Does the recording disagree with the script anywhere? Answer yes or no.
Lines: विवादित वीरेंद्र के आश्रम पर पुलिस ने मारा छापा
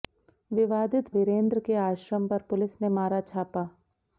no